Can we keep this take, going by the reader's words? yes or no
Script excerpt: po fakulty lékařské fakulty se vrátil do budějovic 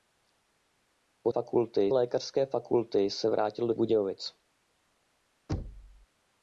yes